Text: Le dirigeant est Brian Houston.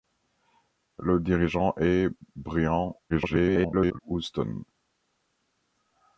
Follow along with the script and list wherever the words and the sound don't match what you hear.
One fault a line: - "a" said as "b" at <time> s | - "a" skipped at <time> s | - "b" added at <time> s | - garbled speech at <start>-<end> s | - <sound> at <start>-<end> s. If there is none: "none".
- garbled speech at 3.1-4.0 s